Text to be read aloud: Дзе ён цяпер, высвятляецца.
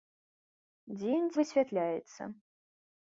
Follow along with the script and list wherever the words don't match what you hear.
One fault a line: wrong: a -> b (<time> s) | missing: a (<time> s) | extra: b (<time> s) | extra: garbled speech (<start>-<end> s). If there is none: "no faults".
missing: цяпер (1.3 s)